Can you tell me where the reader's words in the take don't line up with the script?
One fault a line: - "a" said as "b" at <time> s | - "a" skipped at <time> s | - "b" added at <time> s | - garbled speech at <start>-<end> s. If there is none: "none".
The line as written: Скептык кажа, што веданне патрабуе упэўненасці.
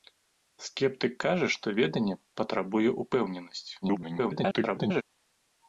- garbled speech at 3.8-5.0 s